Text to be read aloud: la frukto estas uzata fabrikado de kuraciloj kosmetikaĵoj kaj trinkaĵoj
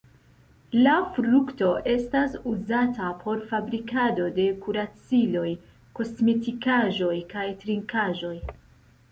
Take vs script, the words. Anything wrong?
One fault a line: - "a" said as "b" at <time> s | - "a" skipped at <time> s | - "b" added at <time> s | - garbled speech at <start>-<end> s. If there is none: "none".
- "por" added at 3.2 s